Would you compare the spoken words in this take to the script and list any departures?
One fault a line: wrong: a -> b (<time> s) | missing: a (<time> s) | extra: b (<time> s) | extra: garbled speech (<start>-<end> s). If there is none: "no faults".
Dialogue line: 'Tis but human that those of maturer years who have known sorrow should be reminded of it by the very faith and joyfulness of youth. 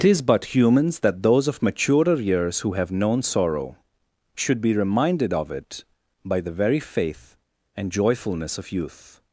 wrong: human -> humans (0.6 s)